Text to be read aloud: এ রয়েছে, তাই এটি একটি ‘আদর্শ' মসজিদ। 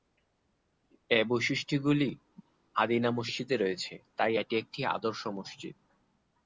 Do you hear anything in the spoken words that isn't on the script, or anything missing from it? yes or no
yes